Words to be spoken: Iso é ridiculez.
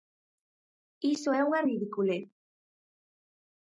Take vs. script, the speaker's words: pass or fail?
fail